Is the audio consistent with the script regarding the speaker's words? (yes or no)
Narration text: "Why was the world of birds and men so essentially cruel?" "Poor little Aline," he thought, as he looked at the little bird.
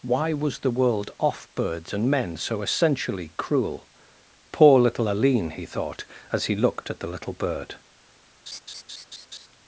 no